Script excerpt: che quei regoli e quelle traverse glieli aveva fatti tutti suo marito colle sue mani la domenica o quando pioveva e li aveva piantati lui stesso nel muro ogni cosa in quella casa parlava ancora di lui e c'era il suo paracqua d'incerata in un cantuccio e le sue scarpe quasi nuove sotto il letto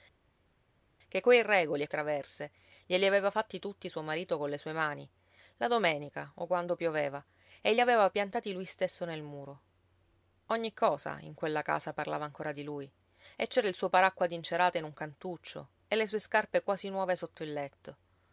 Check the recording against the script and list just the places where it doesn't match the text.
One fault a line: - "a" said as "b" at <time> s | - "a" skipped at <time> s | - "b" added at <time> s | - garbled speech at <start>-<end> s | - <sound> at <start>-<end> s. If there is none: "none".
- "quelle" skipped at 1.9 s